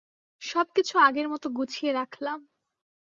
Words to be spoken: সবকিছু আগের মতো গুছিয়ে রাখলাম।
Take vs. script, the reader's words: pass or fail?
pass